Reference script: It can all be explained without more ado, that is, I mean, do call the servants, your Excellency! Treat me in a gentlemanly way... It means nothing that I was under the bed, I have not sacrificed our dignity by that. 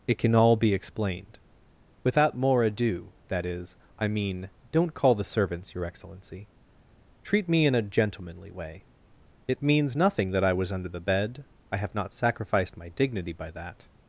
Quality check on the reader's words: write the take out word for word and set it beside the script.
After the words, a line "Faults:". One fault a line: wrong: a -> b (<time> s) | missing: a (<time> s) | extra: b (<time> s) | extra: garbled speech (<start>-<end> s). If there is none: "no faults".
It can all be explained without more ado, that is, I mean, don't call the servants, your Excellency! Treat me in a gentlemanly way... It means nothing that I was under the bed, I have not sacrificed my dignity by that.
Faults:
wrong: do -> don't (4.7 s)
wrong: our -> my (12.8 s)